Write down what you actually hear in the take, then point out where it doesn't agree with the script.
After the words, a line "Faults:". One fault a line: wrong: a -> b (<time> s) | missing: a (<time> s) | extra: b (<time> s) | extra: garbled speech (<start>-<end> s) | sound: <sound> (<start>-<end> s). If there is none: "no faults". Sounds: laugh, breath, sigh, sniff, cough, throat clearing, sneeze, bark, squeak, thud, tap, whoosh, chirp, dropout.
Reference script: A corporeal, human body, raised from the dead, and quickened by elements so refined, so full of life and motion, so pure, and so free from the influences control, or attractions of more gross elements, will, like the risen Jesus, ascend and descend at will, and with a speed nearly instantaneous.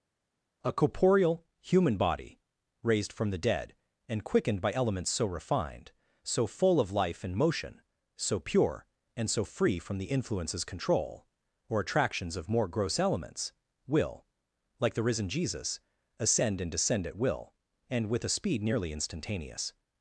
A corporeal, human body, raised from the dead, and quickened by elements so refined, so full of life and motion, so pure, and so free from the influences control, or attractions of more gross elements, will, like the risen Jesus, ascend and descend at will, and with a speed nearly instantaneous.
Faults:
no faults